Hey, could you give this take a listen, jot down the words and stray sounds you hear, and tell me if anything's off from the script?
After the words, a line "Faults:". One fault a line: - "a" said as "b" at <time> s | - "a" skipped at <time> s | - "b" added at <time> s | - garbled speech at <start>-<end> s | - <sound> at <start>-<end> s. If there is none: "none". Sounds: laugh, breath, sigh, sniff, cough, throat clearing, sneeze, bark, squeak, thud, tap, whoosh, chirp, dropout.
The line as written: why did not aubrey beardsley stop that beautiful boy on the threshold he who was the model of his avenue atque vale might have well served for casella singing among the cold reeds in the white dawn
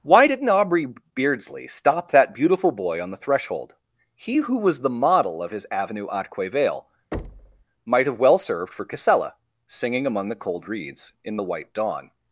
why did not aubrey beardsley stop that beautiful boy on the threshold he who was the model of his avenue atque vale might have well served for casella singing among the cold reeds in the white dawn
Faults:
- thud at 7.1-7.6 s